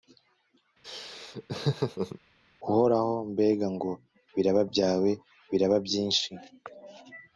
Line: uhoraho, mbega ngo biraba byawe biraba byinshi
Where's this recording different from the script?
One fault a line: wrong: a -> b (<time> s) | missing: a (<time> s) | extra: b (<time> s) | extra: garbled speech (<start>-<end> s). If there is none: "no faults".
no faults